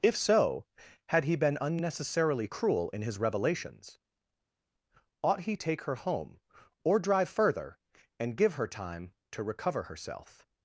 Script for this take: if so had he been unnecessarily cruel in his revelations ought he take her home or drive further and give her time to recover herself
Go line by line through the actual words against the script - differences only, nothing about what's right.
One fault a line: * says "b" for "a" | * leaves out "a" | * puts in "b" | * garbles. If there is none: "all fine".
all fine